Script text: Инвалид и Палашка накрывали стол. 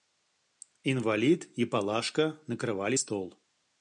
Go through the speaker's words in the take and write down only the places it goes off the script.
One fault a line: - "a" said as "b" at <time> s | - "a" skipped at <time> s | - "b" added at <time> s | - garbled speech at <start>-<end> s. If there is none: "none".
none